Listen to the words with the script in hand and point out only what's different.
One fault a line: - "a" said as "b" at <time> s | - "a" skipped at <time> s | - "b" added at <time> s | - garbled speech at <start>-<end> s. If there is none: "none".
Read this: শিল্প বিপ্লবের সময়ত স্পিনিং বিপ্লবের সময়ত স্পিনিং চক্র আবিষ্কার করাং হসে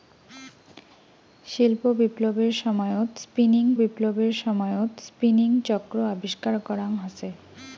none